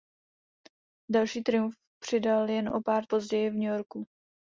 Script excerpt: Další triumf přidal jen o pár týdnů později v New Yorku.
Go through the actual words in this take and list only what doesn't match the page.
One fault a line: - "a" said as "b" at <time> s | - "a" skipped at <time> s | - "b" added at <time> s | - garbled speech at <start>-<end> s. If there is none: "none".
- "týdnů" skipped at 3.0 s